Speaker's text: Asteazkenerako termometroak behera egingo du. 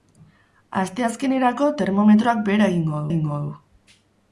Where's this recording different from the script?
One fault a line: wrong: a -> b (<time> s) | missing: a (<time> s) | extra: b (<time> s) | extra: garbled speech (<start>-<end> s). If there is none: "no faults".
extra: egingo (3.1 s)